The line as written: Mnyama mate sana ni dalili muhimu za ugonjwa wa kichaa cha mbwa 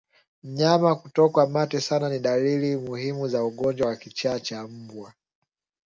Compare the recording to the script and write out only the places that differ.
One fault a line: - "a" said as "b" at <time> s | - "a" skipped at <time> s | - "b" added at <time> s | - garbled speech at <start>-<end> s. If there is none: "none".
- "kutokwa" added at 0.9 s